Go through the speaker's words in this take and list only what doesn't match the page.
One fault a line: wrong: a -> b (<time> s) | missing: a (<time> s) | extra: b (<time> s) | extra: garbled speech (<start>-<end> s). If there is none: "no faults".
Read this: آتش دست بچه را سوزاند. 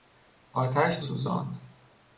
missing: دست بچه را (1.0 s)